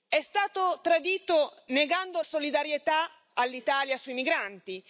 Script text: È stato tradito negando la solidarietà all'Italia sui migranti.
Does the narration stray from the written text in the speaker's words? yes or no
yes